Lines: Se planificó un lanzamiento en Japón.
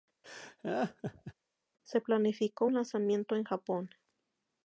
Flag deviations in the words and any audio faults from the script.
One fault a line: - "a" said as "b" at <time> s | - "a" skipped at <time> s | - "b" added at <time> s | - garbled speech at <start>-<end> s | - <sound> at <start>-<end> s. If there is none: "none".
- laugh at 0.2-1.3 s